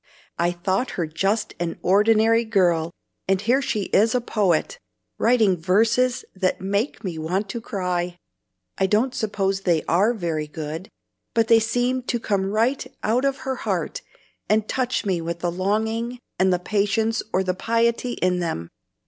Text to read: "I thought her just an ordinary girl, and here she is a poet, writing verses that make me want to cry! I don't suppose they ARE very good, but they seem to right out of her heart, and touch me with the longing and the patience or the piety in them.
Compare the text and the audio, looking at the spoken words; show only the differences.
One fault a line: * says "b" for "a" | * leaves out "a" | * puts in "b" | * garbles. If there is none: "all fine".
* puts in "come"